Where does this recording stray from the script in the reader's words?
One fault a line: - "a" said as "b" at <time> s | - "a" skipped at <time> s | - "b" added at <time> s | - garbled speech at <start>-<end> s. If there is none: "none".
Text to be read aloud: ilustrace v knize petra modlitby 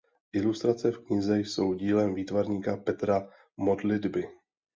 - "jsou dílem výtvarníka" added at 1.4 s